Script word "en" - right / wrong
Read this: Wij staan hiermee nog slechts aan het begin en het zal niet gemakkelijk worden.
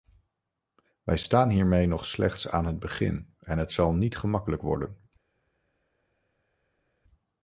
right